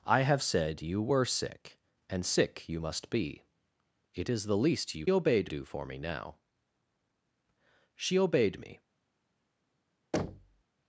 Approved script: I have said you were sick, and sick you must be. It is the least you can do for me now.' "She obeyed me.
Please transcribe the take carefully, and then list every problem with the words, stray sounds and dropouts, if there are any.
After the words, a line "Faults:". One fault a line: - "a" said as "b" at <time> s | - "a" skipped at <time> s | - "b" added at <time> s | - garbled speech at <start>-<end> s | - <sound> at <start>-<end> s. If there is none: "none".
I have said you were sick, and sick you must be. It is the least you obeyed do for me now.' "She obeyed me.
Faults:
- "can" said as "obeyed" at 5.1 s
- thud at 10.1-10.6 s